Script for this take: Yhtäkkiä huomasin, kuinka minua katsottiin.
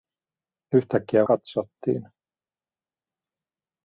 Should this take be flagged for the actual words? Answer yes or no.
yes